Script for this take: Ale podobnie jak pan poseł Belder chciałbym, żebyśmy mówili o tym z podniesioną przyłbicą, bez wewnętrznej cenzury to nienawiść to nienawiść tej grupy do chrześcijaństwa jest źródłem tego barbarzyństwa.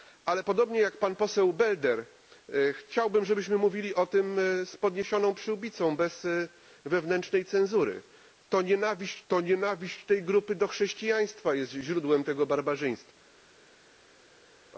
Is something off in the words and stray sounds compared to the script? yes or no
no